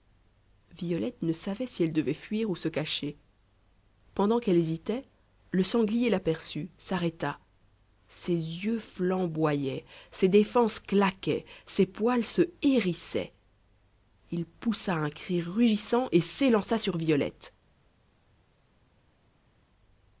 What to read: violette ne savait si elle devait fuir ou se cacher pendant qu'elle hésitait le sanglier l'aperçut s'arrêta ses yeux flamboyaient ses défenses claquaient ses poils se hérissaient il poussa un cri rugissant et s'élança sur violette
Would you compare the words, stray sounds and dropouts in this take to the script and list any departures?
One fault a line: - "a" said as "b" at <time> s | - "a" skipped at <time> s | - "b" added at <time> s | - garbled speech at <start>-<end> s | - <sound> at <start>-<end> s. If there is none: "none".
none